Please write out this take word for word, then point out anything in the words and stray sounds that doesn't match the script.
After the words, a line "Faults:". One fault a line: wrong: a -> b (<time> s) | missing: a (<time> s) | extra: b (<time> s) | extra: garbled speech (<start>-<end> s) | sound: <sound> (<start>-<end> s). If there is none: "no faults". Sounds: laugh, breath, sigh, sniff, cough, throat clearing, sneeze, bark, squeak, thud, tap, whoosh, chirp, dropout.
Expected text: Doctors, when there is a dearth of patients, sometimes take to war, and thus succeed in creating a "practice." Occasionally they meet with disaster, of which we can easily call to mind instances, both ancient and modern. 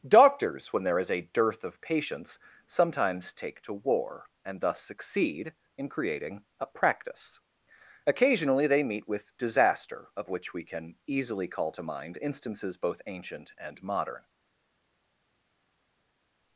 Doctors, when there is a dearth of patients, sometimes take to war, and thus succeed in creating a "practice." Occasionally they meet with disaster, of which we can easily call to mind instances, both ancient and modern.
Faults:
no faults